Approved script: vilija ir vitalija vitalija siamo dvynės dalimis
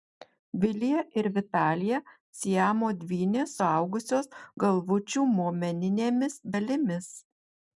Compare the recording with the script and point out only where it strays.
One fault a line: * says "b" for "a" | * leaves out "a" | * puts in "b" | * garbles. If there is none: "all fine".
* leaves out "vitalija"
* puts in "suaugusios galvučių momeninėmis"